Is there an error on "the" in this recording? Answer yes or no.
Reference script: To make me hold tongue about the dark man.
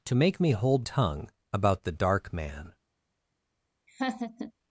no